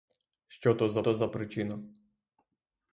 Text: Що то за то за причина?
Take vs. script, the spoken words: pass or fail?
pass